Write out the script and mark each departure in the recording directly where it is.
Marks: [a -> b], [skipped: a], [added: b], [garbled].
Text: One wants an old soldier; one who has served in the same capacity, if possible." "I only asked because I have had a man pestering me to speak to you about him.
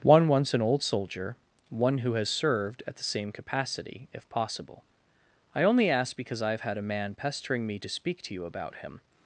One wants an old soldier; one who has served [in -> at] the same capacity, if possible." "I only [asked -> ask] because I have had a man pestering me to speak to you about him.